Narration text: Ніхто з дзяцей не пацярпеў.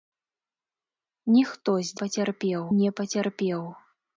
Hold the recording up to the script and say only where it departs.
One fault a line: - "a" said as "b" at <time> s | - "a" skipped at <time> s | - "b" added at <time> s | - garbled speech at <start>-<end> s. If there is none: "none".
- "дзяцей" said as "пацярпеў" at 2.0 s